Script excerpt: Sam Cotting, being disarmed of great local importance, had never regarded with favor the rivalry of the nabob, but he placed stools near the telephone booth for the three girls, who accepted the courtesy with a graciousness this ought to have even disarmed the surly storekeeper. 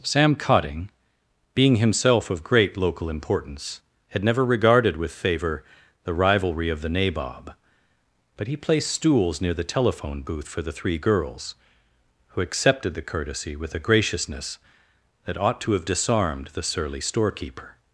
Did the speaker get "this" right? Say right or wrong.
wrong